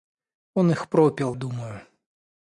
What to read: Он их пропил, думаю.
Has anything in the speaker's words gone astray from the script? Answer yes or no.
no